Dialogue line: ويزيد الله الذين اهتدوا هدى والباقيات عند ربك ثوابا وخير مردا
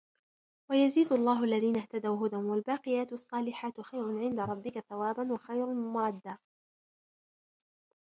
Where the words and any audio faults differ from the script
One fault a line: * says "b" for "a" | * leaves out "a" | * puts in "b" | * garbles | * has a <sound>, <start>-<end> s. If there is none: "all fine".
* puts in "الصالحات خير"